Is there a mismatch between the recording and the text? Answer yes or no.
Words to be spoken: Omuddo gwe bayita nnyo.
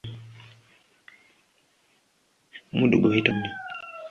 no